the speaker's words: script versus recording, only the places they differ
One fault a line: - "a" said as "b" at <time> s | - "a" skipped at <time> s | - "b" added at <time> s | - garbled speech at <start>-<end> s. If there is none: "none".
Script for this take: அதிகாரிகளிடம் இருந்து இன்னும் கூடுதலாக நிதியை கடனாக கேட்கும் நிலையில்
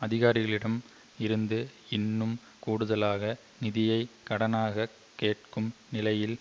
none